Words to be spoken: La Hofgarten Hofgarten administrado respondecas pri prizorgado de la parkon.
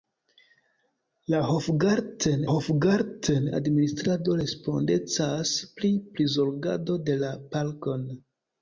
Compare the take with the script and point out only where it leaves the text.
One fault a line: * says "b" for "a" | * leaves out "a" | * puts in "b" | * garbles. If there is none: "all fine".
all fine